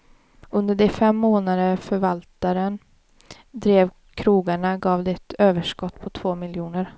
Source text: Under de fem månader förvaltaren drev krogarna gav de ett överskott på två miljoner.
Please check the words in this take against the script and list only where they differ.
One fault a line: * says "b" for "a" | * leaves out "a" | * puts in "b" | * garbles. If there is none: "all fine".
all fine